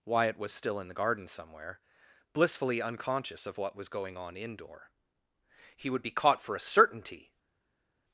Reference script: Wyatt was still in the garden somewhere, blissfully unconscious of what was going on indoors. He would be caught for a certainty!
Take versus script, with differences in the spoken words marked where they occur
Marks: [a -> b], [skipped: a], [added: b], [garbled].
Wyatt was still in the garden somewhere, blissfully unconscious of what was going on [indoors. -> indoor] He would be caught for a certainty!